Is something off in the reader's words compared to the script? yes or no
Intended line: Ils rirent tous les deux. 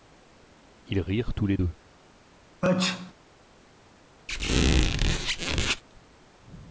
no